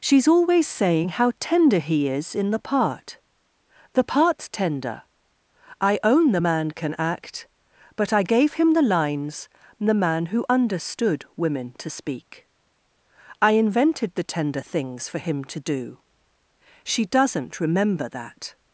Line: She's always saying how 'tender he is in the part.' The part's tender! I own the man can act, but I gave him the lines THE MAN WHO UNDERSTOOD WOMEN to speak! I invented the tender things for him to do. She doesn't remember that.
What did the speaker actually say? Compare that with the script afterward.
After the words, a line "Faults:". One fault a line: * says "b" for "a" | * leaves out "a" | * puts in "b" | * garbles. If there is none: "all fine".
She's always saying how 'tender he is in the part.' The part's tender! I own the man can act, but I gave him the lines THE MAN WHO UNDERSTOOD WOMEN to speak! I invented the tender things for him to do. She doesn't remember that.
Faults:
all fine